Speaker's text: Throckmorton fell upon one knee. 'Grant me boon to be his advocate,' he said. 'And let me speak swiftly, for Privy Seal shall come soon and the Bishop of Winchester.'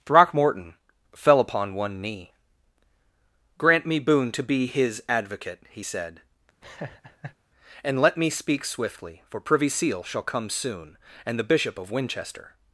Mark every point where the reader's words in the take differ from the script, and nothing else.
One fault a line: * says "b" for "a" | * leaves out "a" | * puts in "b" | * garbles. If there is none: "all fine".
all fine